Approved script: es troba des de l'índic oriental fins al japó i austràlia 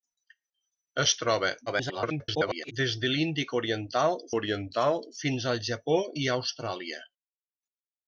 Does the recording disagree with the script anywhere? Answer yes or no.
yes